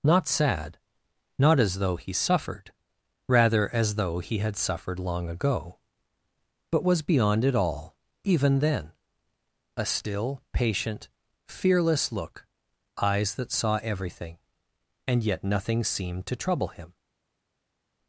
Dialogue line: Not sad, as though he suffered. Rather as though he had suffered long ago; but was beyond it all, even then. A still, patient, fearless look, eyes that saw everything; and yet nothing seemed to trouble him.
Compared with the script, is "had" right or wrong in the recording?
right